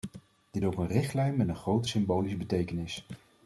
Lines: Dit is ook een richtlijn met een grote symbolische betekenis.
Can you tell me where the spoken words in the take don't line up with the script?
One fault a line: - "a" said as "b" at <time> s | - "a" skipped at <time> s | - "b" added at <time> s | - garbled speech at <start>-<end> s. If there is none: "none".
- "is" skipped at 0.7 s